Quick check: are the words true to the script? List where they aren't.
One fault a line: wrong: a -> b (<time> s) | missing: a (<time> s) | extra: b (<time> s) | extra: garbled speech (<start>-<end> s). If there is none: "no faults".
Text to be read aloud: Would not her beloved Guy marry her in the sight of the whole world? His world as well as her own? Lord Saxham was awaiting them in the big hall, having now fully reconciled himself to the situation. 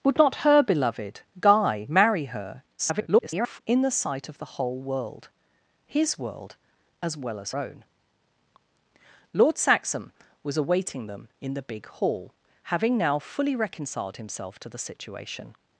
extra: garbled speech (2.8-3.6 s)
missing: her (7.5 s)